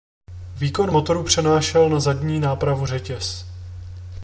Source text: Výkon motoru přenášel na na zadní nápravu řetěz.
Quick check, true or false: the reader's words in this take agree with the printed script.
false